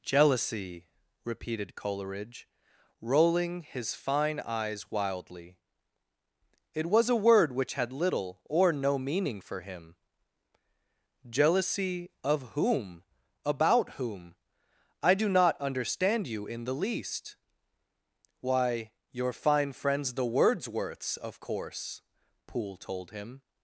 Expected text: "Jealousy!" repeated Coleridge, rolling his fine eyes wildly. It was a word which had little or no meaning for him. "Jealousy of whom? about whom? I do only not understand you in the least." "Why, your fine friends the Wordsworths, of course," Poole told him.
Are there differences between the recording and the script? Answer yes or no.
yes